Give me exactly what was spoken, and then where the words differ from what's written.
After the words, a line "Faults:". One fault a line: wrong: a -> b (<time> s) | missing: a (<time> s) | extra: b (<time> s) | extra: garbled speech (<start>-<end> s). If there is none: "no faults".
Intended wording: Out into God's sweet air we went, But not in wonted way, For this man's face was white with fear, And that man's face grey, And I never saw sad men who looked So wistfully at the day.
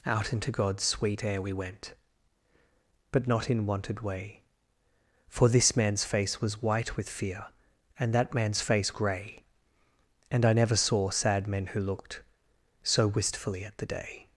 Out into God's sweet air we went, But not in wonted way, For this man's face was white with fear, And that man's face grey, And I never saw sad men who looked So wistfully at the day.
Faults:
no faults